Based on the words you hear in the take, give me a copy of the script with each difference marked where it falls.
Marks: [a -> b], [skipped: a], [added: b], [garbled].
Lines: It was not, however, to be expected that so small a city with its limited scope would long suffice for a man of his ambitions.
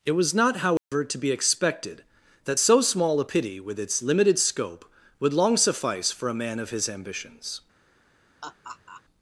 It was not, however, to be expected that so small a [city -> pity] with its limited scope would long suffice for a man of his ambitions.